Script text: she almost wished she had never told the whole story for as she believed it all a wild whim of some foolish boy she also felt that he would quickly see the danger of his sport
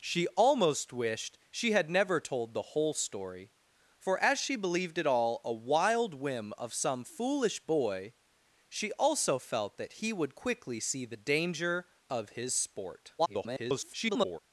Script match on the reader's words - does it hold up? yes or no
no